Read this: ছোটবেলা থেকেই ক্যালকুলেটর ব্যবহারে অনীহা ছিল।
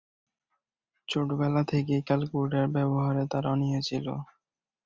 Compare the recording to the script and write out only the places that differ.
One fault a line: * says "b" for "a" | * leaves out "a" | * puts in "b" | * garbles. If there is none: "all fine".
* puts in "তার"